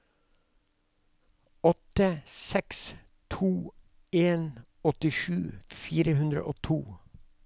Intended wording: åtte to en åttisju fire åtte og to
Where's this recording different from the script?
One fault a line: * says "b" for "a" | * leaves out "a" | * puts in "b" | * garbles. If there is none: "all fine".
* puts in "seks"
* says "hundre" for "åtte"